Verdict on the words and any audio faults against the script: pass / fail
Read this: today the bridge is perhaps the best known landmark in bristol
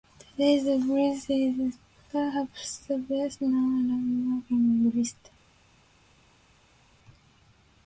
pass